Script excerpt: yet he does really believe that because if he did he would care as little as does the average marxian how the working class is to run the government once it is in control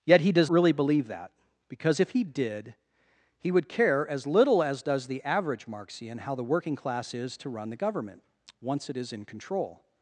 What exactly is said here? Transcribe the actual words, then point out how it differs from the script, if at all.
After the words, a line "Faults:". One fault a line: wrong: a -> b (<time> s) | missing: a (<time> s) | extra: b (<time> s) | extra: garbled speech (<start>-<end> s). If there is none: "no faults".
yet he does really believe that because if he did he would care as little as does the average marxian how the working class is to run the government once it is in control
Faults:
no faults